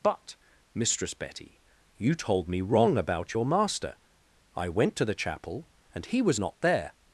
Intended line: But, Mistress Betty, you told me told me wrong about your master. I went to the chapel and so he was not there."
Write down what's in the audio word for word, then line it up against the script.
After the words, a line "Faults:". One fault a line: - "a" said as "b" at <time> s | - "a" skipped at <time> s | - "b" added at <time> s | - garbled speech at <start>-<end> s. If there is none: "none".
But, Mistress Betty, you told me wrong about your master. I went to the chapel and he was not there."
Faults:
- "told me" skipped at 2.6 s
- "so" skipped at 6.0 s